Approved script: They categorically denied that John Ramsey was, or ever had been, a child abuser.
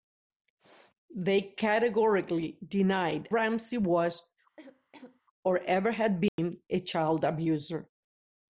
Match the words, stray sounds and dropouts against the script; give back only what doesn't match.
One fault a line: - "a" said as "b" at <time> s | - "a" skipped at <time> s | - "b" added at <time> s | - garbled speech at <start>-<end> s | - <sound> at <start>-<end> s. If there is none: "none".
- "that John" skipped at 3.3 s
- cough at 4.6-5.2 s
- dropout at 6.3-6.4 s